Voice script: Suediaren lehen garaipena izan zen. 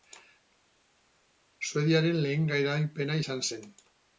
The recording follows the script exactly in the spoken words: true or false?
true